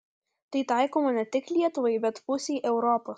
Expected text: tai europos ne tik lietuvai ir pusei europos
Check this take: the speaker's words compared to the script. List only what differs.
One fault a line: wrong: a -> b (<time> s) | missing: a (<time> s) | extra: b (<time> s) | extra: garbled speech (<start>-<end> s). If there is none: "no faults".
wrong: europos -> taikoma (0.7 s)
wrong: ir -> bet (2.1 s)